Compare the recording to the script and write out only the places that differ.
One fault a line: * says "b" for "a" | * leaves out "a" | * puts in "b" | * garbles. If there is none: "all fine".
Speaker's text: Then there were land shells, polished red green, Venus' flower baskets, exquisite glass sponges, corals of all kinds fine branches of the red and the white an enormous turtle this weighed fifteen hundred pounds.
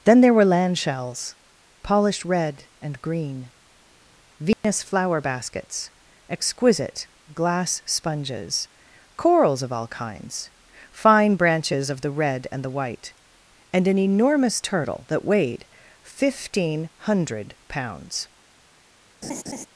* puts in "and"
* puts in "and"
* says "that" for "this"